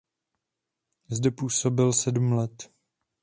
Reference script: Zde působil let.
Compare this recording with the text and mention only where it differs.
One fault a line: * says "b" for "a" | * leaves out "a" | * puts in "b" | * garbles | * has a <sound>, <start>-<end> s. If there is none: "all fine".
* puts in "sedm"